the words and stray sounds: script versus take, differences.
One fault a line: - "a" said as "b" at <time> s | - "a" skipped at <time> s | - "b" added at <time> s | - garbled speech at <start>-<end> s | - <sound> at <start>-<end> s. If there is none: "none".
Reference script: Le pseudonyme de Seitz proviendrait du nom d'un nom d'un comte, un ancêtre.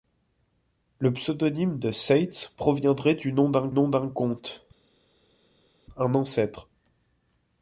none